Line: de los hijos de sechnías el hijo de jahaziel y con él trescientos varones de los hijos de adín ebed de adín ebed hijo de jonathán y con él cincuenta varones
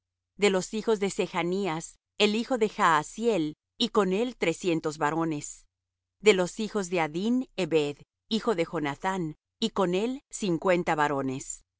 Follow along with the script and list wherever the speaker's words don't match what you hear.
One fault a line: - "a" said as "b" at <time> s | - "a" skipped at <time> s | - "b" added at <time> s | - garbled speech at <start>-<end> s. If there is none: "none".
- "de adín ebed" skipped at 8.0 s